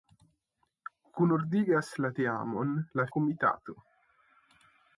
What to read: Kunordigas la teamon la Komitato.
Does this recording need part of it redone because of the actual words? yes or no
no